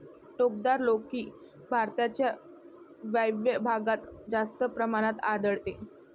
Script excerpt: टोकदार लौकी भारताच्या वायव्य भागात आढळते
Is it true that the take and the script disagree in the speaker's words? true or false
true